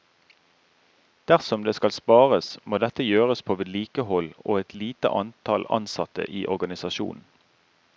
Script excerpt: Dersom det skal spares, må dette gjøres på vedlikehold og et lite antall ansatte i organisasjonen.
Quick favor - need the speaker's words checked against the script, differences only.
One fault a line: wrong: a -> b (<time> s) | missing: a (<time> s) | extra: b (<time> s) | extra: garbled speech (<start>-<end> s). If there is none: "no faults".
no faults